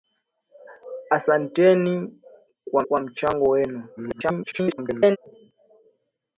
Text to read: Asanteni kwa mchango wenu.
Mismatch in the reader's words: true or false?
true